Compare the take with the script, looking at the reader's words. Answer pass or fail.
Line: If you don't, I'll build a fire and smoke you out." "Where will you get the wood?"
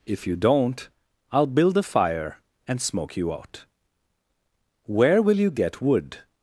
fail